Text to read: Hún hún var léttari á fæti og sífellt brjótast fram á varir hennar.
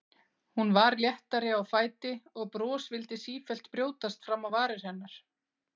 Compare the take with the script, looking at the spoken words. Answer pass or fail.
fail